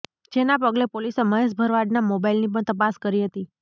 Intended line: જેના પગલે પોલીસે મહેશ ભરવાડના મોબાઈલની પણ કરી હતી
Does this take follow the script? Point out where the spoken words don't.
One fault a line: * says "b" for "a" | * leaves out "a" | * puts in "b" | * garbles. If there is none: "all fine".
* puts in "તપાસ"